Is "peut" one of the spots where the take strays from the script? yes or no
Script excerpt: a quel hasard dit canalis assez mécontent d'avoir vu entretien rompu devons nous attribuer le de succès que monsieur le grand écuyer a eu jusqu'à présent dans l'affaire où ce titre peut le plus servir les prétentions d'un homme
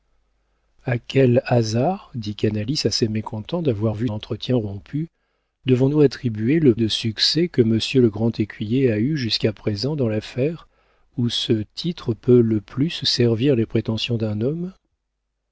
no